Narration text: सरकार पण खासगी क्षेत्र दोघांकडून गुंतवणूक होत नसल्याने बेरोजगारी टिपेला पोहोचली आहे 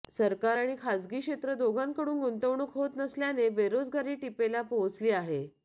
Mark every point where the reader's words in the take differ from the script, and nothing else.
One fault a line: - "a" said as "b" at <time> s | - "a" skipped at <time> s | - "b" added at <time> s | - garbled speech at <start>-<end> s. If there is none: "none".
- "पण" said as "आणि" at 0.5 s